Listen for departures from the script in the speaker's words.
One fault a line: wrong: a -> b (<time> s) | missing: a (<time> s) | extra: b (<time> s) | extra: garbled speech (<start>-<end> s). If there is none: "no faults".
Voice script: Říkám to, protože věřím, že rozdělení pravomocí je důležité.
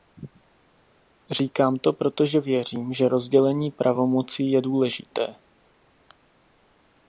no faults